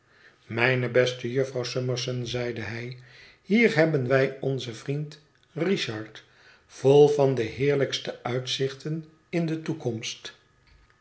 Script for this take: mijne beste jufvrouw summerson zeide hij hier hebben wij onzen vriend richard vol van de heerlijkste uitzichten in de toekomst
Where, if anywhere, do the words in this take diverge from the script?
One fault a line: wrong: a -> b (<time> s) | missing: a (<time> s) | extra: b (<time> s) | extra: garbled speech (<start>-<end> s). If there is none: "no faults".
no faults